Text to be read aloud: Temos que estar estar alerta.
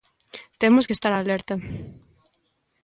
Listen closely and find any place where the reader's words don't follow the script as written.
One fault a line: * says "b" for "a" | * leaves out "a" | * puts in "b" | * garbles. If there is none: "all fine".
* leaves out "estar"